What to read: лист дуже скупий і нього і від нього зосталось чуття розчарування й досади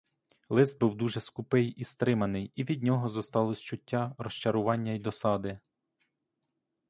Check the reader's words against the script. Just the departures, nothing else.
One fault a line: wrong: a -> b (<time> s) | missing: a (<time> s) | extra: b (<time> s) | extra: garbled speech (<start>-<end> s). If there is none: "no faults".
extra: був (0.8 s)
wrong: нього -> стриманий (1.8 s)